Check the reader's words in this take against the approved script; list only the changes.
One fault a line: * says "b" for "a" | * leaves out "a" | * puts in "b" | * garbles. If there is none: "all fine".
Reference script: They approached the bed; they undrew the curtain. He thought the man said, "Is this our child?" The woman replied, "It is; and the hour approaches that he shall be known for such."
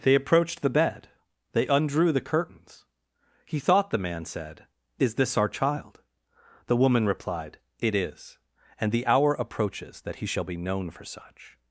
* says "curtains" for "curtain"